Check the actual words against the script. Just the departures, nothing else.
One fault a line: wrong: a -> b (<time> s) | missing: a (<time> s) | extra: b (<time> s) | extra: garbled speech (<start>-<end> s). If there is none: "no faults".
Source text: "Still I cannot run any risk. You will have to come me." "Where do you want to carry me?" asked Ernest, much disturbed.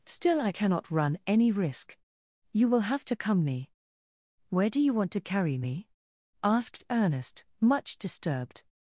no faults